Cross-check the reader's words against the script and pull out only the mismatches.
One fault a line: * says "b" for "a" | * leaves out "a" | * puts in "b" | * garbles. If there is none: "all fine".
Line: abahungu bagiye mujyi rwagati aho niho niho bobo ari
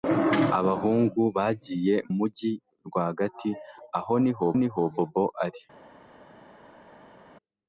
all fine